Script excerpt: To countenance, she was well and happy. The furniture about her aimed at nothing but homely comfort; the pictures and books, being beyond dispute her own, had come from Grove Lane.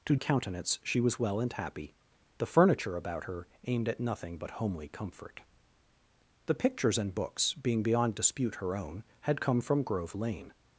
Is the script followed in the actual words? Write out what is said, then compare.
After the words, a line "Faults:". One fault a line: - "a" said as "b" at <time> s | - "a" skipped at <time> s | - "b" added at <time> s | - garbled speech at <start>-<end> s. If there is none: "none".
To countenance, she was well and happy. The furniture about her aimed at nothing but homely comfort; the pictures and books, being beyond dispute her own, had come from Grove Lane.
Faults:
none